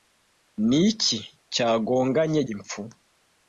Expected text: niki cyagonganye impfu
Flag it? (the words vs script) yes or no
no